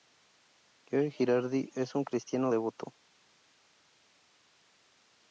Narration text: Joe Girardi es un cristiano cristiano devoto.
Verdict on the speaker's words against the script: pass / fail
fail